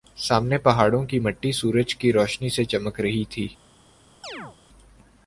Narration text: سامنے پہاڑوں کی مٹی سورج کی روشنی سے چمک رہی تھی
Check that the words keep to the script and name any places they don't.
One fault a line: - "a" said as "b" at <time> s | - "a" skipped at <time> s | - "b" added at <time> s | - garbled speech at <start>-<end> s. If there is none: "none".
none